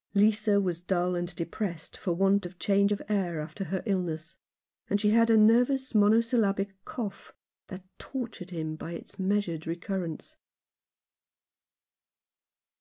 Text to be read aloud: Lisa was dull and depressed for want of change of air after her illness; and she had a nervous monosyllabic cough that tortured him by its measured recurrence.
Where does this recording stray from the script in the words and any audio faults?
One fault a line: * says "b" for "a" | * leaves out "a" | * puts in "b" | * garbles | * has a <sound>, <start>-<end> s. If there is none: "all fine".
all fine